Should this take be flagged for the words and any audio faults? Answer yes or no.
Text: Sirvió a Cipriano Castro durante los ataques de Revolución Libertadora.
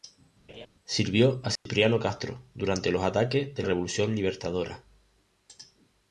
yes